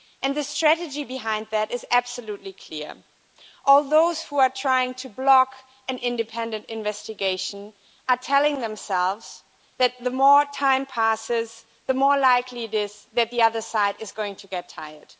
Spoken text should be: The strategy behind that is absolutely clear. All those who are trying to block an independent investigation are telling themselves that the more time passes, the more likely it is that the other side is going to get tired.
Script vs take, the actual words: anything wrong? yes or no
no